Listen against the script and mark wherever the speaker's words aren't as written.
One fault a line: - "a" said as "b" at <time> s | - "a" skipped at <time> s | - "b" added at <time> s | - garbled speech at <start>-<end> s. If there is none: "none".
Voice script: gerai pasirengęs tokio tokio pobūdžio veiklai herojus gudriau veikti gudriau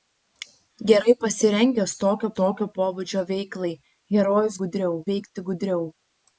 none